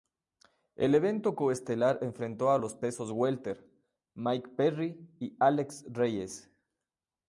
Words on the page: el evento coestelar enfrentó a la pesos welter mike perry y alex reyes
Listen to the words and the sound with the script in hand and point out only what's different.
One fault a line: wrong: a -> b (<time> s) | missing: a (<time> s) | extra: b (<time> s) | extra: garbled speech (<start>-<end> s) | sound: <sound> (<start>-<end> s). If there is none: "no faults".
wrong: la -> los (2.6 s)